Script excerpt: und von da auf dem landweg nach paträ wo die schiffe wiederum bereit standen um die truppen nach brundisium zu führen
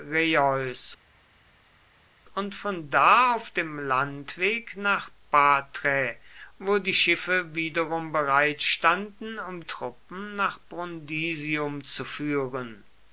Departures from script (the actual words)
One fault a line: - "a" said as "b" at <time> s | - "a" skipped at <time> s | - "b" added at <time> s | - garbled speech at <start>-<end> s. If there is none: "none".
- "die" skipped at 9.6 s